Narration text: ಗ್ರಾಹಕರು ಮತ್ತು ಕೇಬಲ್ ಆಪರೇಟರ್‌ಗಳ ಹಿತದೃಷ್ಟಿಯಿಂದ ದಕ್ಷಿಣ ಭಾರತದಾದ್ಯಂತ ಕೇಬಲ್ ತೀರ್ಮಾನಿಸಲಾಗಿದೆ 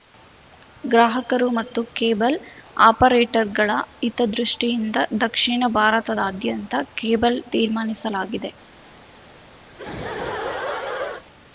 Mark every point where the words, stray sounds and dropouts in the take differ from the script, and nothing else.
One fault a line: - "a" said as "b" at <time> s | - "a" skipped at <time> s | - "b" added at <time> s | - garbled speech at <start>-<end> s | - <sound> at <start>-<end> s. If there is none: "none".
- laugh at 9.7-11.2 s